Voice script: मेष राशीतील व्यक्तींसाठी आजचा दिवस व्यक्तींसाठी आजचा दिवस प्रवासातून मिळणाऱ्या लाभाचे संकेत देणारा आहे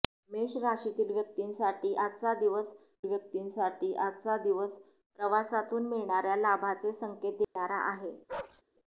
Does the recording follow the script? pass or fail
pass